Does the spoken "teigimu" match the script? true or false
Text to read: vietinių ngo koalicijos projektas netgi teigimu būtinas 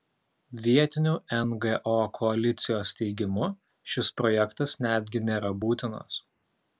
false